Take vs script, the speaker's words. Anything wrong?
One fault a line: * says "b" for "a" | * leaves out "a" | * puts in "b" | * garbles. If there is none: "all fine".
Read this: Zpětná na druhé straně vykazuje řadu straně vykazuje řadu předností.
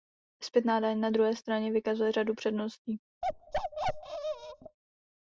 * puts in "daň"
* leaves out "straně vykazuje řadu"